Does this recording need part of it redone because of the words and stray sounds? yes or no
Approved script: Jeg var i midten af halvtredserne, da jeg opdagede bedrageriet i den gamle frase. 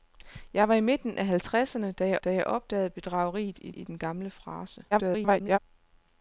yes